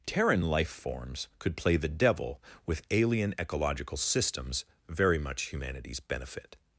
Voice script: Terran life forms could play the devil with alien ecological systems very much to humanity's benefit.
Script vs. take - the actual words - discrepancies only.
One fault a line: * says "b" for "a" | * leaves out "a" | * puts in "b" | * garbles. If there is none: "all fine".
* leaves out "to"